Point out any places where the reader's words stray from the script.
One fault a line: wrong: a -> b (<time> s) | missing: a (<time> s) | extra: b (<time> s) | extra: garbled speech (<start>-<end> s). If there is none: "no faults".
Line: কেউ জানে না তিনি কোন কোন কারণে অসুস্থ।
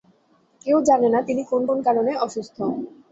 no faults